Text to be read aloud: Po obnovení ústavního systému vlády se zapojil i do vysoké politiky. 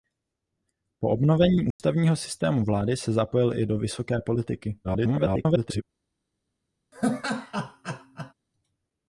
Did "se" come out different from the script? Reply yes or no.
no